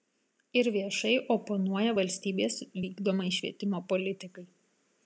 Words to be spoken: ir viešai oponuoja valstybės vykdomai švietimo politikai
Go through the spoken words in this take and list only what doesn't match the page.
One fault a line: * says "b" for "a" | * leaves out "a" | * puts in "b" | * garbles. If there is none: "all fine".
all fine